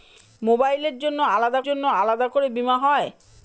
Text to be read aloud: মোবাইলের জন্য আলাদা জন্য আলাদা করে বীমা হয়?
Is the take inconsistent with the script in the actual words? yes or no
no